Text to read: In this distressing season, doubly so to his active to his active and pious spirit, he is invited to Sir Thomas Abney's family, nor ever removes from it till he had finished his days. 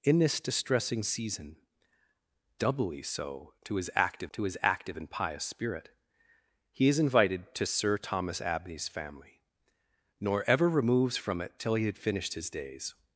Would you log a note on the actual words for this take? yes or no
no